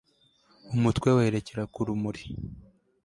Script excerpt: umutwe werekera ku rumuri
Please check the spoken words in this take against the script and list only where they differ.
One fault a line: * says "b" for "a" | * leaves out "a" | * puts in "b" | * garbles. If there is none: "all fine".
all fine